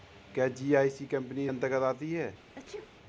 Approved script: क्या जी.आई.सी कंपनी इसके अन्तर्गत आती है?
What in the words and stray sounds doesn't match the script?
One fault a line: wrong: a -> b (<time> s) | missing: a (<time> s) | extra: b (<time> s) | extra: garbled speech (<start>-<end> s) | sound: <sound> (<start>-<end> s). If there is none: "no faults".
missing: इसके (1.4 s)
sound: sneeze (2.5-2.9 s)